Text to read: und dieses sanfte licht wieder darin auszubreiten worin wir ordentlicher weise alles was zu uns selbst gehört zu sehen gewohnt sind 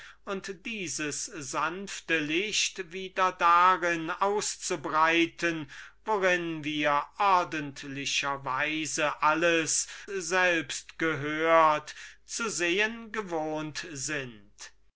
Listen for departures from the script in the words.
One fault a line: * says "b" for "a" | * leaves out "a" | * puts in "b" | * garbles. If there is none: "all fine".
* leaves out "was zu uns"